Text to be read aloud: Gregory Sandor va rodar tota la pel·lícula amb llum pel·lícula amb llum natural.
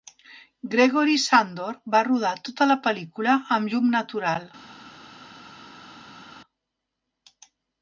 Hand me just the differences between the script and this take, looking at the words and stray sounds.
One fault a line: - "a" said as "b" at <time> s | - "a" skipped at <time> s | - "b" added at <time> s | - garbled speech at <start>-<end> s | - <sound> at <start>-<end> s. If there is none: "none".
- "pel·lícula amb llum" skipped at 3.9 s